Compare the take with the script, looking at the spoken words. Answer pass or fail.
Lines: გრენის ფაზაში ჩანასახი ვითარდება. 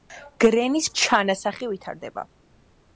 fail